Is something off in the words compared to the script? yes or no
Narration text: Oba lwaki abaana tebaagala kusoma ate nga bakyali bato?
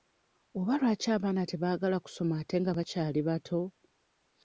no